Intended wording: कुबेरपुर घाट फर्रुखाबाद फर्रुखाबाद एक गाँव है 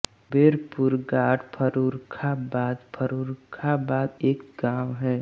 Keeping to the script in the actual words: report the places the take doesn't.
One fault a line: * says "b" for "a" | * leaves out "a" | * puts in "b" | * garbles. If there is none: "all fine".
all fine